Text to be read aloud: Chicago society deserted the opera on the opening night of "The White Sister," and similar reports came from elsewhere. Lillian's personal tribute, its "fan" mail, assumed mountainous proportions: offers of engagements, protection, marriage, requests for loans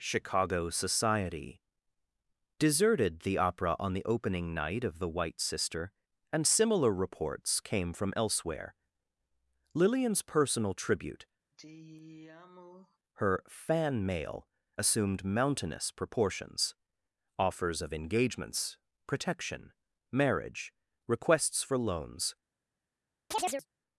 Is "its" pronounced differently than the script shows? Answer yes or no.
yes